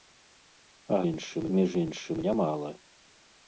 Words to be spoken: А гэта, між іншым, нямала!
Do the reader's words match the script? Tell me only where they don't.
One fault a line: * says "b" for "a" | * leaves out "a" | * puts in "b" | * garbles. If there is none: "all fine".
* says "іншым" for "гэта"